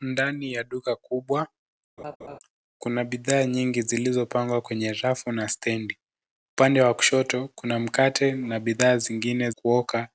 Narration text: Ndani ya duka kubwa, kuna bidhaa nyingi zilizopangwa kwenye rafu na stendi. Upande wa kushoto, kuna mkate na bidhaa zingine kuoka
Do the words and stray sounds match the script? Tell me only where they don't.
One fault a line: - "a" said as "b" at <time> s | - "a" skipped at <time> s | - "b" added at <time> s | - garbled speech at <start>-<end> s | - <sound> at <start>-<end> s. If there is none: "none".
- laugh at 2.0-2.4 s